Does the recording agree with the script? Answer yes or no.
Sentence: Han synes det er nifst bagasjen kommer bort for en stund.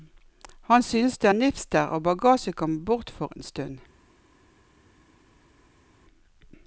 no